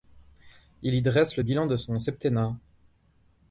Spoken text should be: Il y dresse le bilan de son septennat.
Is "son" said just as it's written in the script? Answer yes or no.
yes